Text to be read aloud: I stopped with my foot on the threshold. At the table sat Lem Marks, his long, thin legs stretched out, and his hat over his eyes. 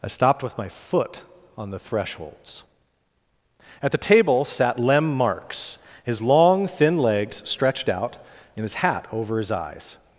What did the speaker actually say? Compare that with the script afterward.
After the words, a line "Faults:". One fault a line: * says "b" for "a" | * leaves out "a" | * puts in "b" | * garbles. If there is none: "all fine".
I stopped with my foot on the thresholds. At the table sat Lem Marks, his long, thin legs stretched out, and his hat over his eyes.
Faults:
* says "thresholds" for "threshold"